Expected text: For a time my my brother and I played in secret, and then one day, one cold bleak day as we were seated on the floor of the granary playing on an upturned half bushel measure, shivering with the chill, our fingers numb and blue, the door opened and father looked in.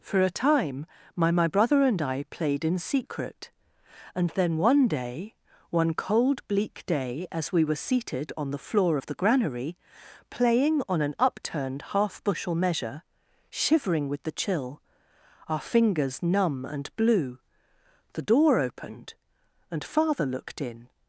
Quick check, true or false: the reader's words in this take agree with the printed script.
true